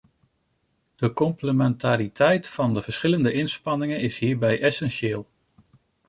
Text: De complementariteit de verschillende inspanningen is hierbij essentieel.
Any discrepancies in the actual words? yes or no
yes